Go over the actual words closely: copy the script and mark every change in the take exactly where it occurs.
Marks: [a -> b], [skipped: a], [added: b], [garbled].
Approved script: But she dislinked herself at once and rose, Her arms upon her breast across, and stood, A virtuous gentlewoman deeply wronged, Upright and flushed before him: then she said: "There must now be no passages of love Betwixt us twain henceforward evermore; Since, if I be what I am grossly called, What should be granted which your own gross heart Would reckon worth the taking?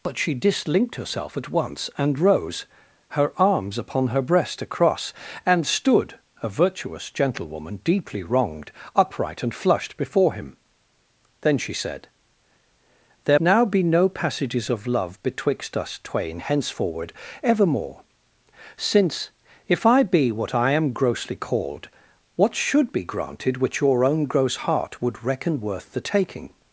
But she dislinked herself at once and rose, Her arms upon her breast across, and stood, A virtuous gentlewoman deeply wronged, Upright and flushed before him: then she said: "There [skipped: must] now be no passages of love Betwixt us twain henceforward evermore; Since, if I be what I am grossly called, What should be granted which your own gross heart Would reckon worth the taking?